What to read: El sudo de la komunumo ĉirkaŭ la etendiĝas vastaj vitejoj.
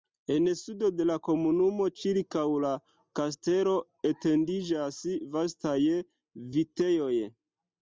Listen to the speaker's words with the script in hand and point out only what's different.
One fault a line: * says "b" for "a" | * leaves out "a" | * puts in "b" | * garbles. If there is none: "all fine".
* says "En" for "El"
* puts in "kastelo"